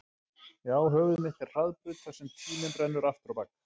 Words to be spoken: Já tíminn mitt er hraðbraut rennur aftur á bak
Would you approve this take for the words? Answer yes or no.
no